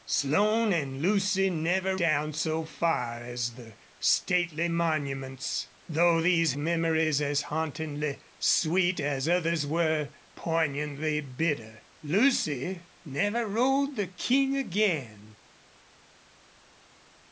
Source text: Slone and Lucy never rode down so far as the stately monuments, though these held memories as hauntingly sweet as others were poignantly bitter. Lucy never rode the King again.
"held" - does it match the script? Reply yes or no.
no